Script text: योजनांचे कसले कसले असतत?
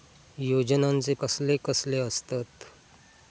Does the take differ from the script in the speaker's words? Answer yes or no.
no